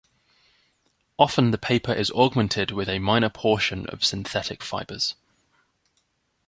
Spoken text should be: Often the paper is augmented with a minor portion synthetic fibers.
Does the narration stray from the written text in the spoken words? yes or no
yes